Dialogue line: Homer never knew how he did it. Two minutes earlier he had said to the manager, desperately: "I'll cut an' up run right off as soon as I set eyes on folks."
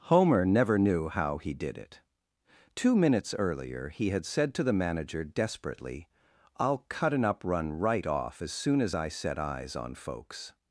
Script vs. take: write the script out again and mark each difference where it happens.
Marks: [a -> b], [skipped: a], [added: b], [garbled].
Homer never knew how he did it. Two minutes earlier he had said to the manager, desperately: "I'll cut an' up run right off as soon as I set eyes on folks."